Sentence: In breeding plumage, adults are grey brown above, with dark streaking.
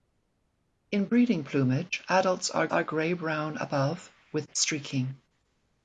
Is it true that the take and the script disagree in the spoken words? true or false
true